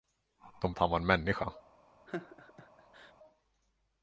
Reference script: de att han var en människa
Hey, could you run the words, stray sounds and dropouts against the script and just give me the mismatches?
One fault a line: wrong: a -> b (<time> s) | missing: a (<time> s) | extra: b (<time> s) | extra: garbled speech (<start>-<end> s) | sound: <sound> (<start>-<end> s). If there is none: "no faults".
sound: laugh (2.1-3.1 s)